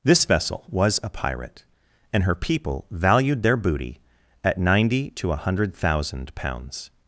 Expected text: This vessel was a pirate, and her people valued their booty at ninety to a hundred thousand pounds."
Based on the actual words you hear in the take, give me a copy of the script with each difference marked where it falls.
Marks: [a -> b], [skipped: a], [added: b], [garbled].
This vessel was a pirate, and her people valued their booty at ninety to a hundred thousand pounds."